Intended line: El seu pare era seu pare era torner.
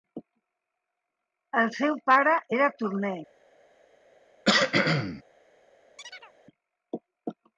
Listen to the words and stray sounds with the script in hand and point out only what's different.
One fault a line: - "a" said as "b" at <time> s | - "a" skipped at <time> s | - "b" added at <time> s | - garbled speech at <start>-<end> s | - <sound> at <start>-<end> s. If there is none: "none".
- "seu pare era" skipped at 2.7 s
- cough at 4.4-5.2 s
- chirp at 6.0-6.3 s